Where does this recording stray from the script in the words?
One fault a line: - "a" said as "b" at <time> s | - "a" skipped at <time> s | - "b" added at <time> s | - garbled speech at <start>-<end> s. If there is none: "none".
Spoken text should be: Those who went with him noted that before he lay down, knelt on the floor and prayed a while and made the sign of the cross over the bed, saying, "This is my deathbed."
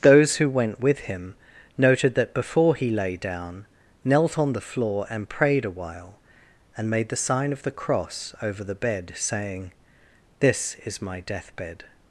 none